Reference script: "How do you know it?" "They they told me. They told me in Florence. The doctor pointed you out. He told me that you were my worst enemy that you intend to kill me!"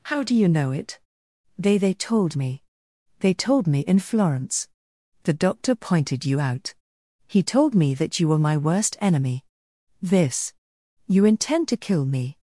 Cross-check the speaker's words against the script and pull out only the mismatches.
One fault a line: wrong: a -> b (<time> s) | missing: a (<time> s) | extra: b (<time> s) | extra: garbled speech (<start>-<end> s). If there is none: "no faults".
wrong: that -> this (10.0 s)